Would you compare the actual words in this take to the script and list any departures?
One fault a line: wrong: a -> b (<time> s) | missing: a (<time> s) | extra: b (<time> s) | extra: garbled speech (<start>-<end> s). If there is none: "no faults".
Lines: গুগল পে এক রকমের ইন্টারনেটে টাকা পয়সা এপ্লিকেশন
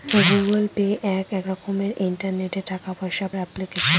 no faults